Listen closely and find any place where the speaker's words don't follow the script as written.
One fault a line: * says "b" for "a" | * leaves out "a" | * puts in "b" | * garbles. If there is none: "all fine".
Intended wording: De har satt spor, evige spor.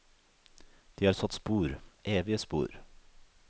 all fine